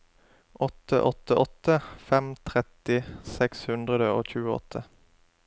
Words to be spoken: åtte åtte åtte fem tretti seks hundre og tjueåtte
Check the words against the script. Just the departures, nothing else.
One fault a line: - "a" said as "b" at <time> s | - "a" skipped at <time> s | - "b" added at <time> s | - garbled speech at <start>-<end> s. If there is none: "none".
none